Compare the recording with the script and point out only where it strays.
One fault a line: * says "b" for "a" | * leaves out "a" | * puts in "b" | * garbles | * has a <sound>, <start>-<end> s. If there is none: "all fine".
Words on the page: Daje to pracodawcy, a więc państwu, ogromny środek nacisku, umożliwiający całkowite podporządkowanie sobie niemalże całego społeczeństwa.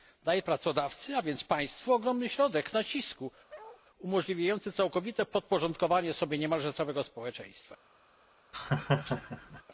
* leaves out "to"
* has a bark, 3.5-3.8 s
* has a laugh, 8.5-9.6 s